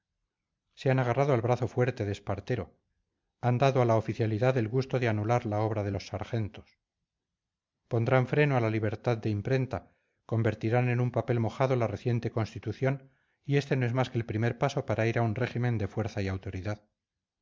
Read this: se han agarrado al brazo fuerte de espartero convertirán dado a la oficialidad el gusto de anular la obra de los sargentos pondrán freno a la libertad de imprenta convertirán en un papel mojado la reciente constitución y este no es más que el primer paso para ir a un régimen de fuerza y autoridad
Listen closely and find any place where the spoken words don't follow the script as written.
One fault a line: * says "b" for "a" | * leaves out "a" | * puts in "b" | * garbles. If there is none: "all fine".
* says "han" for "convertirán"